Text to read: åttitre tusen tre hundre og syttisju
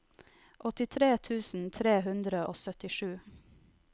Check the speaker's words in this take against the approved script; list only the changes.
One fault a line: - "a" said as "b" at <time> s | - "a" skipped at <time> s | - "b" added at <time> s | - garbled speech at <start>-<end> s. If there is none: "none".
none